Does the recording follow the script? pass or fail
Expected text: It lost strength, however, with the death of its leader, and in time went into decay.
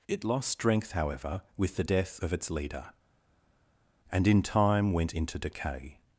pass